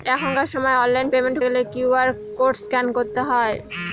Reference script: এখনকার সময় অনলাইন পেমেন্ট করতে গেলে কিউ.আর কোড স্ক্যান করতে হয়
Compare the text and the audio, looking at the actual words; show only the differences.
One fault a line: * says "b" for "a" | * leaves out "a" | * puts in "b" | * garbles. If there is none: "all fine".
* leaves out "করতে"